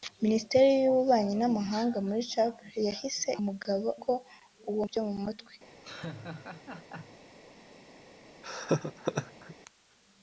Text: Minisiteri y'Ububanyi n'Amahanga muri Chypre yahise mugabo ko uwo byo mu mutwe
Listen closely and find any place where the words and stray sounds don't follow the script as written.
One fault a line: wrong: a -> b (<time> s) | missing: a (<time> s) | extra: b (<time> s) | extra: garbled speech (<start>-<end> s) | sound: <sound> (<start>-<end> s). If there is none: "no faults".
sound: laugh (5.8-7.2 s)
sound: laugh (8.4-9.6 s)